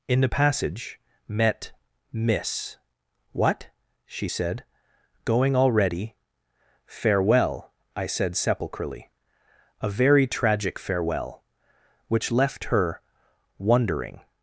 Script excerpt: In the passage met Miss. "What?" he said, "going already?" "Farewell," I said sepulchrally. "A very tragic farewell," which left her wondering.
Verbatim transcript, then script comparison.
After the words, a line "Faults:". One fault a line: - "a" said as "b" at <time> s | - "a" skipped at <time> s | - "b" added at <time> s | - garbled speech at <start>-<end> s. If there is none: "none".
In the passage met Miss. "What?" she said, "going already?" "Farewell," I said sepulchrally. "A very tragic farewell," which left her wondering.
Faults:
- "he" said as "she" at 4.1 s